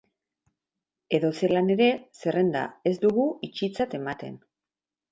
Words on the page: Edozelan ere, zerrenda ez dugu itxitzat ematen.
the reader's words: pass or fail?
pass